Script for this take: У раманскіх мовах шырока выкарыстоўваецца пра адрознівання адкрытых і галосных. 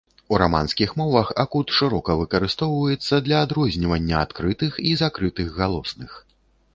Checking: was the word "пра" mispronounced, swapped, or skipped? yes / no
yes